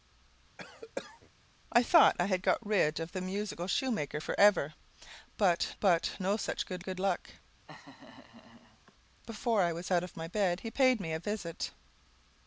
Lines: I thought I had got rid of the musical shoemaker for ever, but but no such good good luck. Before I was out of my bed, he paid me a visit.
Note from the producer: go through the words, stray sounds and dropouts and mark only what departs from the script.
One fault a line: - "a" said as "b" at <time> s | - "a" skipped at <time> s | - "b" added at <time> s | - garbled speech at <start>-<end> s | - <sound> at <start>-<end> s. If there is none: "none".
- cough at 0.6-1.3 s
- laugh at 7.7-8.9 s